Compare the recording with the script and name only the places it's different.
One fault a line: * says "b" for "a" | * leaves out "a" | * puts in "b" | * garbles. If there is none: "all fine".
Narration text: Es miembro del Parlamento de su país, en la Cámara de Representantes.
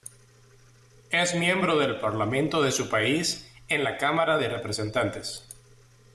all fine